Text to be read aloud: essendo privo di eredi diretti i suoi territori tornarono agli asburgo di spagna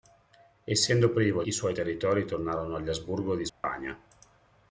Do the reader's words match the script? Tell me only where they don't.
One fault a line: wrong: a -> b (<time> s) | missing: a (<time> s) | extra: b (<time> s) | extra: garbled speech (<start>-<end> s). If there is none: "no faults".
missing: di eredi diretti (1.4 s)